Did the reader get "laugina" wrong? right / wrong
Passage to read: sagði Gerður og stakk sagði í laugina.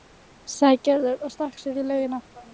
right